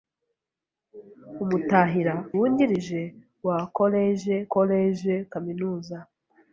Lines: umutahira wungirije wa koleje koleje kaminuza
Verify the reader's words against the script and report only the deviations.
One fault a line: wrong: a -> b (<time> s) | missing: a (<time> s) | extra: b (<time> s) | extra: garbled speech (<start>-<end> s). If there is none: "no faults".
no faults